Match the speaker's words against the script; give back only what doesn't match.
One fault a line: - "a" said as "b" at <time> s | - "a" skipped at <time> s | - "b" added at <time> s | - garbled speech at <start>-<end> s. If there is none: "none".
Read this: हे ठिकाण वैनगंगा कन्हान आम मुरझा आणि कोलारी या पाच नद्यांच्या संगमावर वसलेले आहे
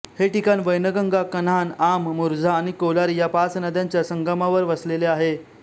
none